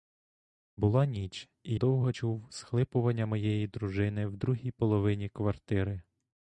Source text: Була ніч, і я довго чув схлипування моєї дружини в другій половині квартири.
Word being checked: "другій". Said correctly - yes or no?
yes